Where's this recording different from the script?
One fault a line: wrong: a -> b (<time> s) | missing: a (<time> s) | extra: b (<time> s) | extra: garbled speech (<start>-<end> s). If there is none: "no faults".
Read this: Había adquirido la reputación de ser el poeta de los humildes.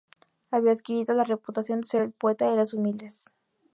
no faults